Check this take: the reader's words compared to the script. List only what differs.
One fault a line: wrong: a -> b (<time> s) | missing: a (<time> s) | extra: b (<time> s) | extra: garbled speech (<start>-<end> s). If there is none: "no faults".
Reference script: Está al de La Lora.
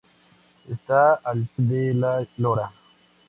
no faults